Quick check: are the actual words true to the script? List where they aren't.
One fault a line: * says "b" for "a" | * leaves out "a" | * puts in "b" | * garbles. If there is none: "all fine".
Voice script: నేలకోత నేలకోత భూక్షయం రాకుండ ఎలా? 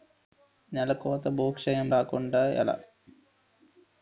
* leaves out "నేలకోత"